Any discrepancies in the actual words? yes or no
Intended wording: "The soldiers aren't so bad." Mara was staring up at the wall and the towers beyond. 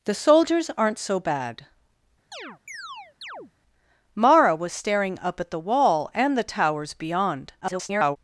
yes